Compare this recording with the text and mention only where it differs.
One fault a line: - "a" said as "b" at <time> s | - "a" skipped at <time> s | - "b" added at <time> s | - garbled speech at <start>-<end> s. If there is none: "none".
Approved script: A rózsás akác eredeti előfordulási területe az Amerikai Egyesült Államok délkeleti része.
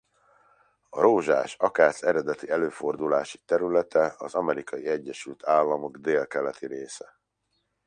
none